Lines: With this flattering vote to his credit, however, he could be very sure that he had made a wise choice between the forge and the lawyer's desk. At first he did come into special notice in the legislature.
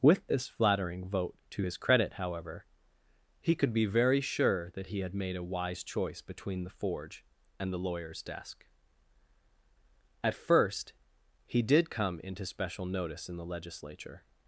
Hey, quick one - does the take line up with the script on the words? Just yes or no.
yes